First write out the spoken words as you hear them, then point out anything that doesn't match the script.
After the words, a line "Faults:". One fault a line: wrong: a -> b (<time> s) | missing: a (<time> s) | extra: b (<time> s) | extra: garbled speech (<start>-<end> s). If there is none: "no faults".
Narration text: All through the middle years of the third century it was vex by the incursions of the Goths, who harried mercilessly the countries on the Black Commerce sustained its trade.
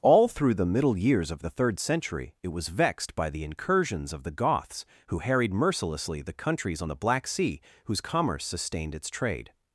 All through the middle years of the third century it was vexed by the incursions of the Goths, who harried mercilessly the countries on the Black Sea whose commerce sustained its trade.
Faults:
wrong: vex -> vexed (2.7 s)
extra: Sea whose (7.3 s)